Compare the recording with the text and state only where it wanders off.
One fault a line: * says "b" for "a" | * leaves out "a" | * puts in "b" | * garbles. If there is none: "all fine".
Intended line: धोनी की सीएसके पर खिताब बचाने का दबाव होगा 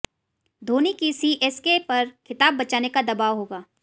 all fine